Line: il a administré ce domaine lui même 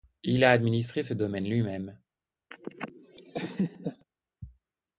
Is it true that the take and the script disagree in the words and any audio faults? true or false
true